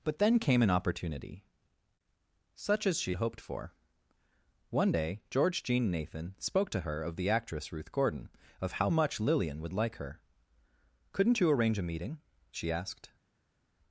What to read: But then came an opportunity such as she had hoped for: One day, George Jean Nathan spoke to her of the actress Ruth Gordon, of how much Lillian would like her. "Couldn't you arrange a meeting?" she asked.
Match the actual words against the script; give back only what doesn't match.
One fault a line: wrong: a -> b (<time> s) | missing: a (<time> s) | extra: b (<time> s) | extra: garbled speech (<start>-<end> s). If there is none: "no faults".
missing: had (3.1 s)